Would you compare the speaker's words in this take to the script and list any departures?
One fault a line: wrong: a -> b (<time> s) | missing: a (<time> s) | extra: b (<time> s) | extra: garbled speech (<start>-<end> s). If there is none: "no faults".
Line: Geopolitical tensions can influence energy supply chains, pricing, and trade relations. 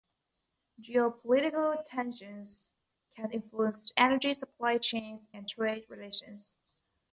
missing: pricing (5.3 s)